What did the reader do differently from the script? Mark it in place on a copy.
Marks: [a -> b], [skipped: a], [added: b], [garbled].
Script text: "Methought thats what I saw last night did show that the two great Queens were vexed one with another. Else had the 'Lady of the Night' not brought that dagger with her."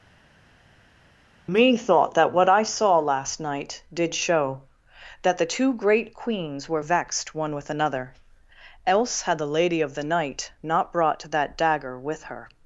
"Methought [thats -> that] what I saw last night did show that the two great Queens were vexed one with another. Else had the 'Lady of the Night' not brought that dagger with her."